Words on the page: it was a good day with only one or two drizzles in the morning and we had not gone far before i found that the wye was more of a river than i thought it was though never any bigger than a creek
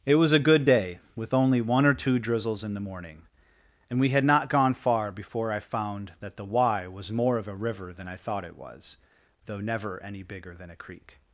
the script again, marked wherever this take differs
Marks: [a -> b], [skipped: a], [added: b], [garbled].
it was a good day with only one or two drizzles in the morning and we had not gone far before i found that the wye was more of a river than i thought it was though never any bigger than a creek